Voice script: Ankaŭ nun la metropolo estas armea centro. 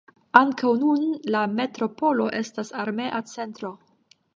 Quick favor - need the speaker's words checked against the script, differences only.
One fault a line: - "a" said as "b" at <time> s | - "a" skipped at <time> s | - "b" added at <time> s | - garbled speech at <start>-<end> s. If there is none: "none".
none